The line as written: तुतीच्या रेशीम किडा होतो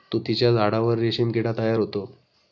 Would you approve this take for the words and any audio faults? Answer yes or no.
no